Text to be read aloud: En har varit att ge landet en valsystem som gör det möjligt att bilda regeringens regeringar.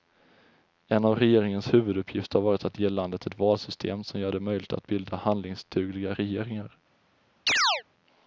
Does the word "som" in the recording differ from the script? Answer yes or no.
no